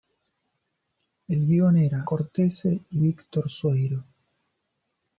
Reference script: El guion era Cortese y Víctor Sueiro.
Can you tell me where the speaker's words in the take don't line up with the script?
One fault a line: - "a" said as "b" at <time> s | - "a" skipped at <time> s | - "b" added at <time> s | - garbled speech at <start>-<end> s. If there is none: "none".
none